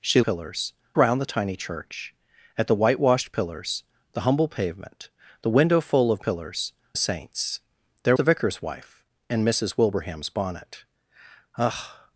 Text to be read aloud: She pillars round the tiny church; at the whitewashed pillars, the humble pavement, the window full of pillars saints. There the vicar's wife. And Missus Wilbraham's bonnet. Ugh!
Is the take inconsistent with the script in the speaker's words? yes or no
no